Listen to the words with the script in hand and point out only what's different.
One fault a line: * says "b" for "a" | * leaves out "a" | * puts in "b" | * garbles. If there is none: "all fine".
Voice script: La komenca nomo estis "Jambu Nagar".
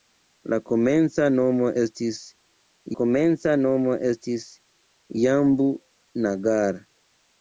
* puts in "komenca nomo estis"